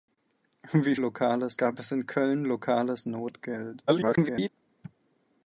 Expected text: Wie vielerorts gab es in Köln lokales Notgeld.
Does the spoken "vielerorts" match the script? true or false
false